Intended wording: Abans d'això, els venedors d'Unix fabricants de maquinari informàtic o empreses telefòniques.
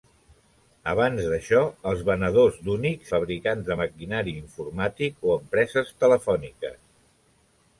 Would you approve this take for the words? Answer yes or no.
yes